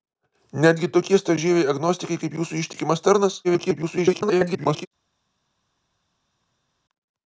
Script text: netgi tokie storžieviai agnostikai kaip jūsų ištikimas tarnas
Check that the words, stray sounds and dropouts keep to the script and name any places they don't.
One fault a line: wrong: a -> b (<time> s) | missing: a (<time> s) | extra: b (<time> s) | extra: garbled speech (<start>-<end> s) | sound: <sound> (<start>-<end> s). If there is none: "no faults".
extra: garbled speech (3.4-4.9 s)